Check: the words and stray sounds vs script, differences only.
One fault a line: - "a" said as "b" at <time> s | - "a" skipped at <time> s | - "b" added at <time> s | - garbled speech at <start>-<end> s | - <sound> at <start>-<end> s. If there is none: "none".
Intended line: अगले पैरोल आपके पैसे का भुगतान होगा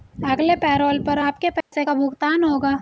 - "पर" added at 1.0 s
- dropout at 1.6-1.7 s